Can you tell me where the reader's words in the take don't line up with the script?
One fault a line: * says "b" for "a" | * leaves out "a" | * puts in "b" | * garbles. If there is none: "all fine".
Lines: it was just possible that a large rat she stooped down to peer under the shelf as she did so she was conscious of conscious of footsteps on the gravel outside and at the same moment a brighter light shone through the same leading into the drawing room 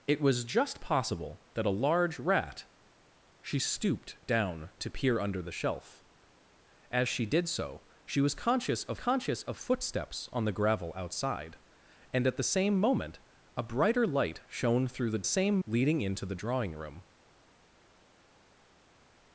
all fine